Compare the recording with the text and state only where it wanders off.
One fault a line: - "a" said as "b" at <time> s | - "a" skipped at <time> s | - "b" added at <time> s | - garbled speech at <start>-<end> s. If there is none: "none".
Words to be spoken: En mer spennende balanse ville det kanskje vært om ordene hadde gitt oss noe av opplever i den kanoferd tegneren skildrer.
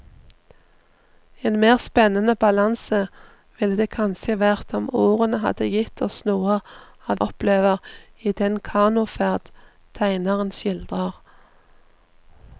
none